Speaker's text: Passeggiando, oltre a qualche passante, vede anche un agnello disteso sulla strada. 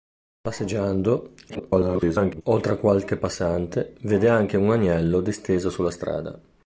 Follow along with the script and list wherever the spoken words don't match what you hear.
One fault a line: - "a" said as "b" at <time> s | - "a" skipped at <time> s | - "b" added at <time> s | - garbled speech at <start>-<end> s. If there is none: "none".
- garbled speech at 1.5-2.4 s